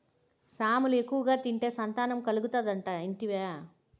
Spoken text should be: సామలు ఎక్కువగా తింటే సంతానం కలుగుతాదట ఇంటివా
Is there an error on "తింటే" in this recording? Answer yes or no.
no